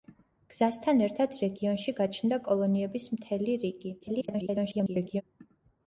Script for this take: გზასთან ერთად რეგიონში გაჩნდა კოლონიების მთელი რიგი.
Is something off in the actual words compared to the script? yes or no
yes